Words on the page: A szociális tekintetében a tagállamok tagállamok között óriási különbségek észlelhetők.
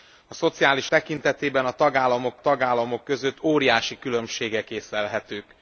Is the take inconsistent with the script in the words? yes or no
no